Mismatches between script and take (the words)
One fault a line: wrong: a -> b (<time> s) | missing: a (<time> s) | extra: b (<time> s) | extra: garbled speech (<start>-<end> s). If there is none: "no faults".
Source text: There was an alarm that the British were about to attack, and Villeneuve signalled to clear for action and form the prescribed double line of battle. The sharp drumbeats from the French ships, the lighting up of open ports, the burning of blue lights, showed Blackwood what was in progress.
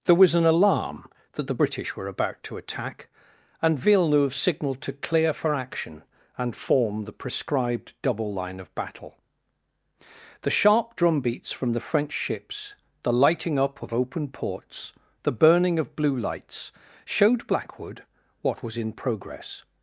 no faults